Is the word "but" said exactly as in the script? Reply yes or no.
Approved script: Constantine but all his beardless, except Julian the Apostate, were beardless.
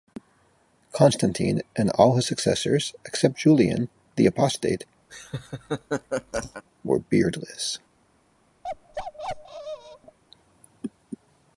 no